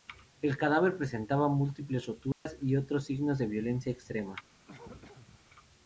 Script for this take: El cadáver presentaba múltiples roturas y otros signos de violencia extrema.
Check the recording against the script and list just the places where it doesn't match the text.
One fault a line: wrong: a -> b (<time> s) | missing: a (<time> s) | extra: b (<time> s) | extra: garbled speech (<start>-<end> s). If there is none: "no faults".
no faults